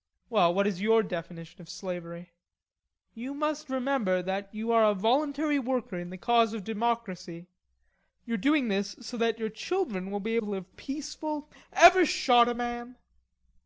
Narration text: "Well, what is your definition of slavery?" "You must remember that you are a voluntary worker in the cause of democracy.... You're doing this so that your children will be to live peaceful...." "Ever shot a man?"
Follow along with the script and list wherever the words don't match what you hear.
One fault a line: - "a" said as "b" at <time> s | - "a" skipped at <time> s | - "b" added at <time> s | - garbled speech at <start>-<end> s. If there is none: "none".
none